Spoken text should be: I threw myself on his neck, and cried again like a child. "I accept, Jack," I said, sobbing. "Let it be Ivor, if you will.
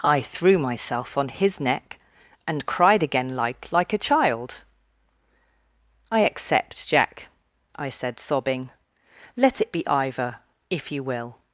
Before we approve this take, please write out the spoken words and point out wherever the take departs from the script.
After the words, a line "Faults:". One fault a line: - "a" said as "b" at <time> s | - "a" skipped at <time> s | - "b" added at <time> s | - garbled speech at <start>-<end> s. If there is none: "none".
I threw myself on his neck, and cried again like like a child. "I accept, Jack," I said, sobbing. "Let it be Ivor, if you will.
Faults:
- "like" added at 3.7 s